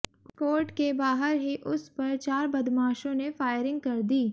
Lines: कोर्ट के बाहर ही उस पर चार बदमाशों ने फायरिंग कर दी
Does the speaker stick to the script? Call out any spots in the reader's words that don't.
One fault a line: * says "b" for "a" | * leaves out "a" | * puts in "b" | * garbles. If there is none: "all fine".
all fine